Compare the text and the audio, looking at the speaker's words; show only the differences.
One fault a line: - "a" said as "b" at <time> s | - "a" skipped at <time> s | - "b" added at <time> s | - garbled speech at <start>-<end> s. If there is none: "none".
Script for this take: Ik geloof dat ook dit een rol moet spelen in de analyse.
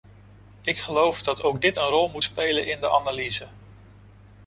none